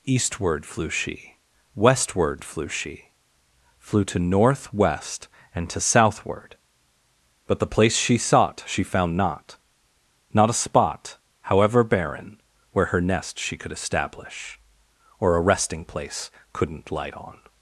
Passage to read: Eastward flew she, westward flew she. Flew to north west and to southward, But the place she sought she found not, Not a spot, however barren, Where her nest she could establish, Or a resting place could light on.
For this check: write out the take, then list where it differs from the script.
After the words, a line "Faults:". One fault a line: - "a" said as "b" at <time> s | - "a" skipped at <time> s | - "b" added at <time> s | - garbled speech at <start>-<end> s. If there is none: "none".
Eastward flew she, westward flew she. Flew to north west and to southward, But the place she sought she found not, Not a spot, however barren, Where her nest she could establish, Or a resting place couldn't light on.
Faults:
- "could" said as "couldn't" at 16.5 s